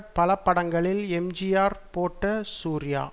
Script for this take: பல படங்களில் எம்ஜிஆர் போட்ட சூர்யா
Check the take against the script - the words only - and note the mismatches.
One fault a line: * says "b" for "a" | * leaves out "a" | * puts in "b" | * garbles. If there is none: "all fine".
all fine